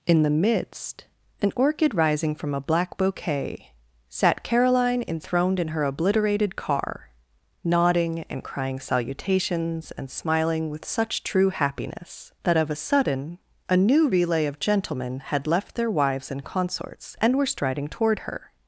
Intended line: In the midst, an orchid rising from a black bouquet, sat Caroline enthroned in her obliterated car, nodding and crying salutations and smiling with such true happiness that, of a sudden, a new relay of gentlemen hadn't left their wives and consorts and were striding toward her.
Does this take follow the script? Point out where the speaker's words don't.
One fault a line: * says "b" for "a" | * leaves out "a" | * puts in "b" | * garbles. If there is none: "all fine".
* says "had" for "hadn't"